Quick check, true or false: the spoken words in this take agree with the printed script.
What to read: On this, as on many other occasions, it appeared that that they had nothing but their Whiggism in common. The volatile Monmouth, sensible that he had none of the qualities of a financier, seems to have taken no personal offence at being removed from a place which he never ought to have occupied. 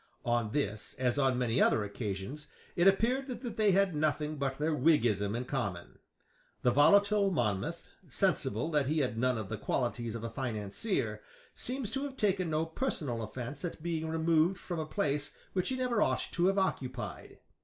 true